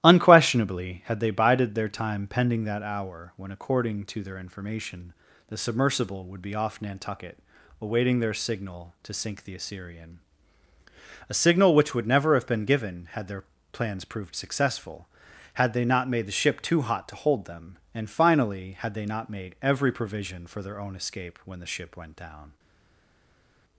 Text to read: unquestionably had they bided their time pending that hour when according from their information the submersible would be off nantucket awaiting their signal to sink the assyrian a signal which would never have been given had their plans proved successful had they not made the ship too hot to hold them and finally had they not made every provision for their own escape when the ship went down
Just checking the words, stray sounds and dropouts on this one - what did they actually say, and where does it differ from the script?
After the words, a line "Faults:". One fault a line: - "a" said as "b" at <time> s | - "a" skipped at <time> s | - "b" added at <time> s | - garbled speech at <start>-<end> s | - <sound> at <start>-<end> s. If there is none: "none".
unquestionably had they bided their time pending that hour when according to their information the submersible would be off nantucket awaiting their signal to sink the assyrian a signal which would never have been given had their plans proved successful had they not made the ship too hot to hold them and finally had they not made every provision for their own escape when the ship went down
Faults:
- "from" said as "to" at 4.0 s